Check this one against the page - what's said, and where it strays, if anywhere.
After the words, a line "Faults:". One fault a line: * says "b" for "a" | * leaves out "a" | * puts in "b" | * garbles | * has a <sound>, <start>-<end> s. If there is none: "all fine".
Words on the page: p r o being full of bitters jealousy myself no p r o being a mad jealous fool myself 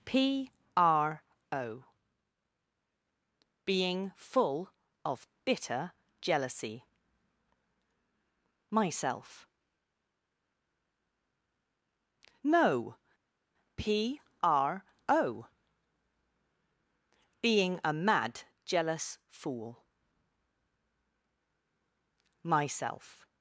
p r o being full of bitter jealousy myself no p r o being a mad jealous fool myself
Faults:
* says "bitter" for "bitters"